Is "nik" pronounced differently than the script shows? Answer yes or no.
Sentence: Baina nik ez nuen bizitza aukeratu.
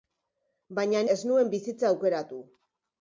yes